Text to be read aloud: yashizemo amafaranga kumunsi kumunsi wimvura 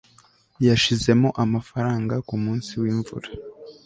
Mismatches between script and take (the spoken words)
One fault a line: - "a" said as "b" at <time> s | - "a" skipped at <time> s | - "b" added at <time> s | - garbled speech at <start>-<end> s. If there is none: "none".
- "kumunsi" skipped at 2.7 s